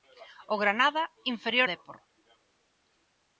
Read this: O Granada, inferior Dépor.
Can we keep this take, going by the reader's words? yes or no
yes